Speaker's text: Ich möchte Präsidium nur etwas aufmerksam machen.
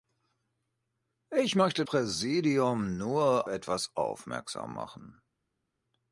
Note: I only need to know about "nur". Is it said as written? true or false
true